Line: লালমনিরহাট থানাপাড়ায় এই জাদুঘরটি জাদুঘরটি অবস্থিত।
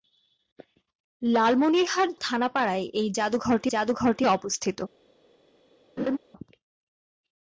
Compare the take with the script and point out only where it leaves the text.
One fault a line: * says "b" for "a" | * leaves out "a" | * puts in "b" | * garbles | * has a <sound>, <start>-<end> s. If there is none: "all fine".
* has a laugh, 6.0-6.2 s